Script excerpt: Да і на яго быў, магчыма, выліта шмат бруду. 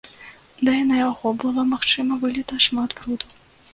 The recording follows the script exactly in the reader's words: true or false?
false